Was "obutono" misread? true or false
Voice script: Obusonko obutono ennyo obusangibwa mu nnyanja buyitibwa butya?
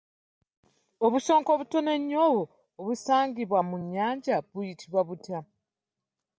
false